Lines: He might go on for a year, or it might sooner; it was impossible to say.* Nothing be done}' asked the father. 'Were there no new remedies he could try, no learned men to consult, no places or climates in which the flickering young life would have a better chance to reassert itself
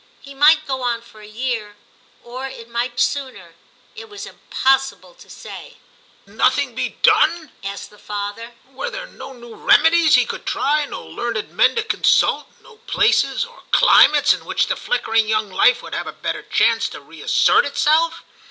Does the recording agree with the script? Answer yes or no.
yes